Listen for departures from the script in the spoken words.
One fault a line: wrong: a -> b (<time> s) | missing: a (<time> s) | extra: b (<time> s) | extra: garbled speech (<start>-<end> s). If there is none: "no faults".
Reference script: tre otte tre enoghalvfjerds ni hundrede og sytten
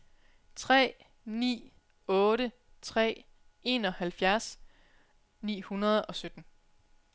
extra: ni (1.2 s)